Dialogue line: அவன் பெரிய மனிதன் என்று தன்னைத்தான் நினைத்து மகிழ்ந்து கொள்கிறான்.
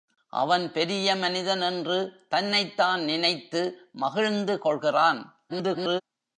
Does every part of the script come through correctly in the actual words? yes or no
no